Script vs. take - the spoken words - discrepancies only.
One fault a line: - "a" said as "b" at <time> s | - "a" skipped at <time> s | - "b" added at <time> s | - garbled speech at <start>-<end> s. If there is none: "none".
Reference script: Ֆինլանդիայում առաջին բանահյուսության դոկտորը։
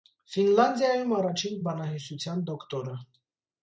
none